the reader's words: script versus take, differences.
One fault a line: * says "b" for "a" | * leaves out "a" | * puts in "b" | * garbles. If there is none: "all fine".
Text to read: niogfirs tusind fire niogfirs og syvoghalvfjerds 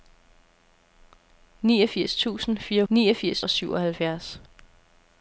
all fine